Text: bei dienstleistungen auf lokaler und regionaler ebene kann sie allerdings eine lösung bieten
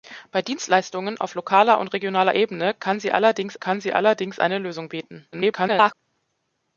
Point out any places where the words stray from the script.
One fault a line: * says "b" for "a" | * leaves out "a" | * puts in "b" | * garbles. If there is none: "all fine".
* puts in "kann sie allerdings"
* garbles